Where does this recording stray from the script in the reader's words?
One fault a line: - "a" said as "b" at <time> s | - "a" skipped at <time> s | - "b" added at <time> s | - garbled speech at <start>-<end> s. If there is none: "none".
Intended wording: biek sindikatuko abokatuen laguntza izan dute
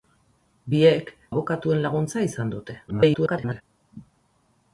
- "sindikatuko" skipped at 1.1 s
- garbled speech at 2.9-3.6 s